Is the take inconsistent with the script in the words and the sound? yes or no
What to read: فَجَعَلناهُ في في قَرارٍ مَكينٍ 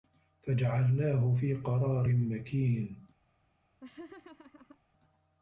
yes